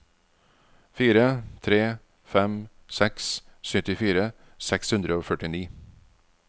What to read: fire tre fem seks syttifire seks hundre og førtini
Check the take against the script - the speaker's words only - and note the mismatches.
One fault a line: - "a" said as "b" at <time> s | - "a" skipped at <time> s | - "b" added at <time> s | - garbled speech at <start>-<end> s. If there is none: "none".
none